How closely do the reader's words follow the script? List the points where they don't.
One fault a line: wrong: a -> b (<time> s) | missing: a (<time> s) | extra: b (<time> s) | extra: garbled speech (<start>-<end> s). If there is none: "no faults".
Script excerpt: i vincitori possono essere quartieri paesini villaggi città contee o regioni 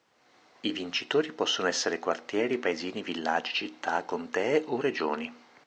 no faults